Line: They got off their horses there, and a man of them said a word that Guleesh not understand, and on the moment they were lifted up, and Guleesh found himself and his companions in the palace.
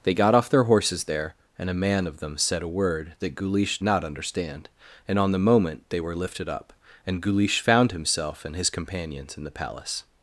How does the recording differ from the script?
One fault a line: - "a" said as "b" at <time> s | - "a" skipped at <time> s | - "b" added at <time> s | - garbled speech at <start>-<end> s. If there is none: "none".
none